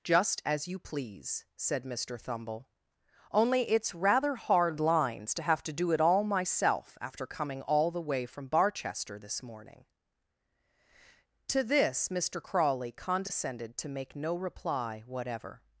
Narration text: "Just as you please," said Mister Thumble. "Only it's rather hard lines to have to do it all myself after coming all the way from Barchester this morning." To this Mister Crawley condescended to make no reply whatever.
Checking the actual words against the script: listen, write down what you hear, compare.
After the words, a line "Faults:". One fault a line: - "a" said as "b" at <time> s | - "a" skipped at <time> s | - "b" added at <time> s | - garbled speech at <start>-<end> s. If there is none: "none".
"Just as you please," said Mister Thumble. "Only it's rather hard lines to have to do it all myself after coming all the way from Barchester this morning." To this Mister Crawley condescended to make no reply whatever.
Faults:
none